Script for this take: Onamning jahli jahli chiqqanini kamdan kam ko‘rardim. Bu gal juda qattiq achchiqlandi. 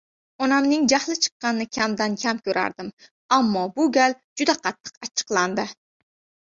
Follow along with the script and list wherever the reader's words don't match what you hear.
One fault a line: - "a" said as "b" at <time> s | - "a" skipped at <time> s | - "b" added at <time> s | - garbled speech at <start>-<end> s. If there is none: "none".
- "jahli" skipped at 1.2 s
- "Ammo" added at 3.4 s